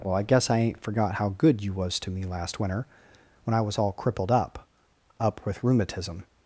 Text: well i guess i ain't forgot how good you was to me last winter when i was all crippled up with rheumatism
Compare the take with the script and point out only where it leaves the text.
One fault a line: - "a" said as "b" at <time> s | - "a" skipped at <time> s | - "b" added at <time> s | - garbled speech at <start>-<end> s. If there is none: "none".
- "up" added at 5.2 s